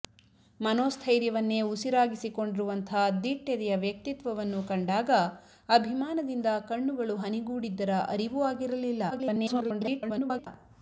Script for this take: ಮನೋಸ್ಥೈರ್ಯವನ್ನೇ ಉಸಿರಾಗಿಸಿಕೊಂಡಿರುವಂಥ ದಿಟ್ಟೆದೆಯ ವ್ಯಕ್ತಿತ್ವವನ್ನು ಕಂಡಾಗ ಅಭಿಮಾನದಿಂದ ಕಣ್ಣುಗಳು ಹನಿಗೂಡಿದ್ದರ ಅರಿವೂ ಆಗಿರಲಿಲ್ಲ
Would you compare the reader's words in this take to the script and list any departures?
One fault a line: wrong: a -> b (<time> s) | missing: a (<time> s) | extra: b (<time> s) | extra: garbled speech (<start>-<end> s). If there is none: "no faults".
extra: garbled speech (9.1-10.5 s)